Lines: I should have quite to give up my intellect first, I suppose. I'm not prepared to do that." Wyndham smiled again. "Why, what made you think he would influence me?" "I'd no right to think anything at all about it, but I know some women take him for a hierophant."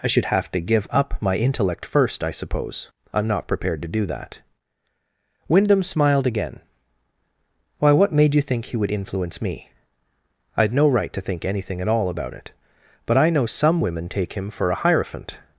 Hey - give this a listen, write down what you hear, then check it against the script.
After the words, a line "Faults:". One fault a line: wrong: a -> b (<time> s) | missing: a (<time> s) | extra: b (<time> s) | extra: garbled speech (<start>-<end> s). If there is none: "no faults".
I should have to give up my intellect first, I suppose. I'm not prepared to do that." Wyndham smiled again. "Why, what made you think he would influence me?" "I'd no right to think anything at all about it, but I know some women take him for a hierophant."
Faults:
missing: quite (0.5 s)